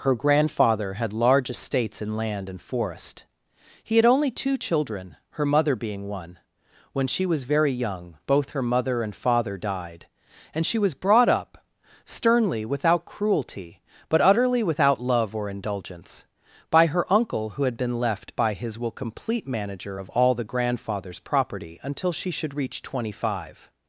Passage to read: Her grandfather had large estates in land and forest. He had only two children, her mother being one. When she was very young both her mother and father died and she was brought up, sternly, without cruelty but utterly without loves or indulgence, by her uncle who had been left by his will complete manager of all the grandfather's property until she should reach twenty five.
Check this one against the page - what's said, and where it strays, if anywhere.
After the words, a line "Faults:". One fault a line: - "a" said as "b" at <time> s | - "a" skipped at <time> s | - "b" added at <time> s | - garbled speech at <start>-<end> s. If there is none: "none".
Her grandfather had large estates in land and forest. He had only two children, her mother being one. When she was very young both her mother and father died and she was brought up, sternly, without cruelty but utterly without love or indulgence, by her uncle who had been left by his will complete manager of all the grandfather's property until she should reach twenty five.
Faults:
- "loves" said as "love" at 15.0 s